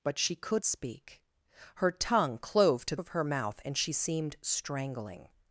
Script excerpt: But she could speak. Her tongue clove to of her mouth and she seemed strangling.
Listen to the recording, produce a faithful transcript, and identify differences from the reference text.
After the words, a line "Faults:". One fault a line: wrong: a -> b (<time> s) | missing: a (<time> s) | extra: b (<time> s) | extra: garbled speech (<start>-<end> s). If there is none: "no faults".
But she could speak. Her tongue clove to of her mouth and she seemed strangling.
Faults:
no faults